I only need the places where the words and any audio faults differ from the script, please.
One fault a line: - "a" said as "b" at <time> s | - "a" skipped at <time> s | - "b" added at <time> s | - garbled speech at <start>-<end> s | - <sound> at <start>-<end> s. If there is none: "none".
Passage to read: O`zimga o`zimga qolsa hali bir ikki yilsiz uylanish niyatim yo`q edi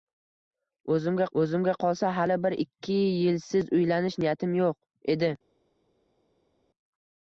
none